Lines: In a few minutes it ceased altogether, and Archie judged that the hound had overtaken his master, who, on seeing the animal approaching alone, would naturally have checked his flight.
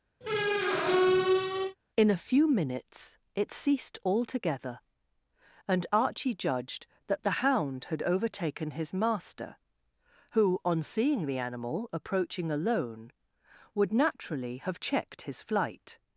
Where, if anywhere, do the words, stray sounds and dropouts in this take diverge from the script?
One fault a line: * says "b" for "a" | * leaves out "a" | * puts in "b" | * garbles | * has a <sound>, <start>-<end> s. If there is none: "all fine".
* has a squeak, 0.2-1.8 s